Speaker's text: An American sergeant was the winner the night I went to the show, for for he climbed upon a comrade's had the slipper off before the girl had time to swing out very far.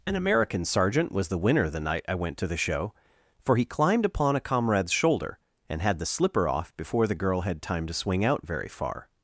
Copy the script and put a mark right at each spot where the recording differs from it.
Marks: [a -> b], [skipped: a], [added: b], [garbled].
An American sergeant was the winner the night I went to the show, for [skipped: for] he climbed upon a comrade's [added: shoulder and] had the slipper off before the girl had time to swing out very far.